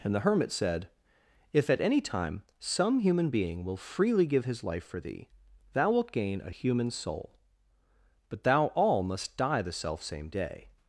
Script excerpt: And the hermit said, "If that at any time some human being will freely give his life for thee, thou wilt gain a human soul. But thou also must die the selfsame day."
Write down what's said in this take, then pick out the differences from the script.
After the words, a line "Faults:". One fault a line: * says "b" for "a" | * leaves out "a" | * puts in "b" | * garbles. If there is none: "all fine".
And the hermit said, "If at any time some human being will freely give his life for thee, thou wilt gain a human soul. But thou all must die the selfsame day."
Faults:
* leaves out "that"
* says "all" for "also"